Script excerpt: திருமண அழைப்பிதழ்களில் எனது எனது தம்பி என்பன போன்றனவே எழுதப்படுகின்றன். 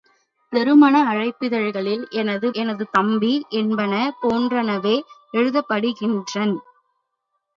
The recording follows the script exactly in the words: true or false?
true